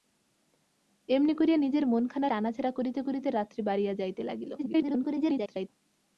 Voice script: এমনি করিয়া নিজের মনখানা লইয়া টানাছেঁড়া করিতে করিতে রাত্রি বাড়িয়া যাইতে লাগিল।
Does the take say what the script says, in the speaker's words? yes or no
no